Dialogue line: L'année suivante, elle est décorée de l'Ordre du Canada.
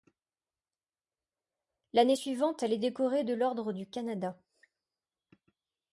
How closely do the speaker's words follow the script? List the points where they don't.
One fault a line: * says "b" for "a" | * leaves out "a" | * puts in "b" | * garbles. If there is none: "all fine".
all fine